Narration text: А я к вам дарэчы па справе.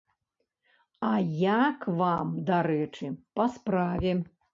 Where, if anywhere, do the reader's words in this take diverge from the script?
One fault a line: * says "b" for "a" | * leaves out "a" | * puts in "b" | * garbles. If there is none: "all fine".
all fine